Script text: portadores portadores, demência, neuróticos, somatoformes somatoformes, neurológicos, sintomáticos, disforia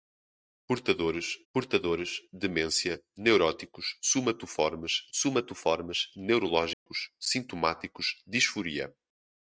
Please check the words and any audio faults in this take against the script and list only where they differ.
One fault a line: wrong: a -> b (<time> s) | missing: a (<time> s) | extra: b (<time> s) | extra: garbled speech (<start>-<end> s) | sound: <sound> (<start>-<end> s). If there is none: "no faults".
sound: dropout (6.7-6.9 s)